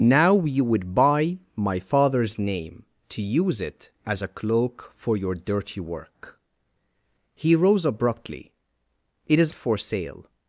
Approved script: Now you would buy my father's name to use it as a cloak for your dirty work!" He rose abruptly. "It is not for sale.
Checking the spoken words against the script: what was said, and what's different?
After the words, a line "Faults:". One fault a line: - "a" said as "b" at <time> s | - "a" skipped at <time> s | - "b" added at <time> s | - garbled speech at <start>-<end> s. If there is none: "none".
Now you would buy my father's name to use it as a cloak for your dirty work!" He rose abruptly. "It is for sale.
Faults:
- "not" skipped at 9.5 s